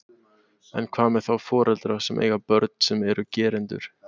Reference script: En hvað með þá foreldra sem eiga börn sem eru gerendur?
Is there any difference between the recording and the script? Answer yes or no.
no